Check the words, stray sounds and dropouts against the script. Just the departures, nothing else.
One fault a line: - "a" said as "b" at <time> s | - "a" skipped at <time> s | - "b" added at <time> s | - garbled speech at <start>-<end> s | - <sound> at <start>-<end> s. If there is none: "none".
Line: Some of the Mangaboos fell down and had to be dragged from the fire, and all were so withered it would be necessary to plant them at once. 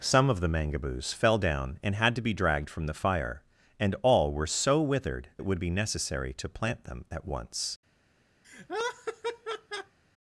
- laugh at 8.4-10.0 s